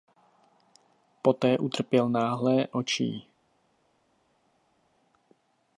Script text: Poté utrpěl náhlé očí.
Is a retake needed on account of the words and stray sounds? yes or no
no